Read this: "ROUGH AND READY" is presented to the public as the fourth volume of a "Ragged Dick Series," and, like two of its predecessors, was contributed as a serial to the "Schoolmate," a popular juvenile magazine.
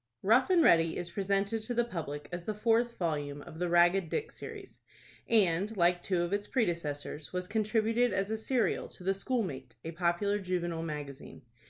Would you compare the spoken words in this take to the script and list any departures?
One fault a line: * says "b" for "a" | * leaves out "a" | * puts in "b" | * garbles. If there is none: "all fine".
* says "the" for "a"